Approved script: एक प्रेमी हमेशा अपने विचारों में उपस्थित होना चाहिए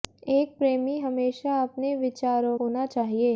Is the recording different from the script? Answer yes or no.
yes